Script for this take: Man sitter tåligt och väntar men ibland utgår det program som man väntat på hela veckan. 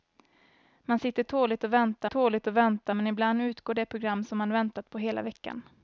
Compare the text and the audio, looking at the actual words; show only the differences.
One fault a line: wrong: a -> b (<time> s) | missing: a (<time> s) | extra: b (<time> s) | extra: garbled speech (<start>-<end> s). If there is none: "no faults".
extra: tåligt och väntar (2.0 s)